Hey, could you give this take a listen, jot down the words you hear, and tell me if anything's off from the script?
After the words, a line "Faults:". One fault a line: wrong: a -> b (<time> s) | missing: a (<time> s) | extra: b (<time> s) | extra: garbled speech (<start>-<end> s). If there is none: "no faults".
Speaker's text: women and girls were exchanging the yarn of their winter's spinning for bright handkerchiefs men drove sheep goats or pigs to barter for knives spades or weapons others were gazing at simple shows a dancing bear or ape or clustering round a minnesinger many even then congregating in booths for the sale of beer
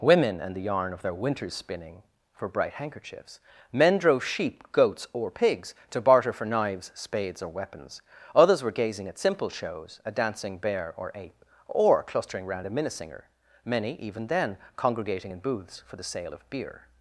women and the yarn of their winter's spinning for bright handkerchiefs men drove sheep goats or pigs to barter for knives spades or weapons others were gazing at simple shows a dancing bear or ape or clustering round a minnesinger many even then congregating in booths for the sale of beer
Faults:
missing: girls were exchanging (0.6 s)